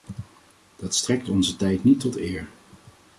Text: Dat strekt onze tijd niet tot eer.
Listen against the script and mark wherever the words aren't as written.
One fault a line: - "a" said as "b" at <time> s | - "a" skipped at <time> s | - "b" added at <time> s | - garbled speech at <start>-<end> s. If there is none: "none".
none